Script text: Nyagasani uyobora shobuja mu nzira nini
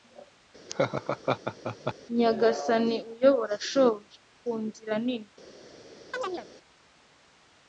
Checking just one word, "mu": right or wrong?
wrong